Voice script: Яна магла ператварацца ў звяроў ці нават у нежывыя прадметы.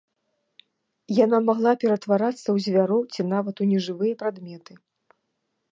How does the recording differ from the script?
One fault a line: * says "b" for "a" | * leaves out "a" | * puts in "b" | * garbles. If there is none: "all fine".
all fine